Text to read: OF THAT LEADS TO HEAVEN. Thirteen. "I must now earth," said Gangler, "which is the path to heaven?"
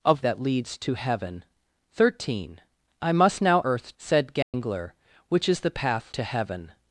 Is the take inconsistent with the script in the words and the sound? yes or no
yes